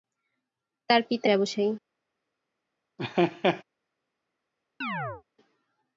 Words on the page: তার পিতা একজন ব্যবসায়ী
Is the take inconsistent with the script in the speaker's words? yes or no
yes